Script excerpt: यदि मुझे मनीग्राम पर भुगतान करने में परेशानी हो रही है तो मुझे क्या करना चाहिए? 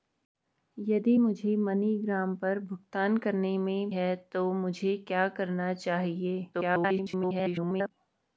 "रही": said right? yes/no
no